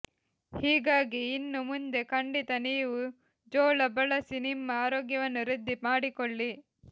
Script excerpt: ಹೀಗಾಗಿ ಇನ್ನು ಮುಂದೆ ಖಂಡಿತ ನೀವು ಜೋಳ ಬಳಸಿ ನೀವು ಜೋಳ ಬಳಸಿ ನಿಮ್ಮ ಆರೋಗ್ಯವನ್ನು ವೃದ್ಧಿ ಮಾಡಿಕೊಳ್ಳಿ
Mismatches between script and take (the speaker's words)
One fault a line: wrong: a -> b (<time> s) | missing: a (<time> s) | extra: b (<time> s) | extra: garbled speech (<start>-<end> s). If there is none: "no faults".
missing: ನೀವು ಜೋಳ ಬಳಸಿ (4.4 s)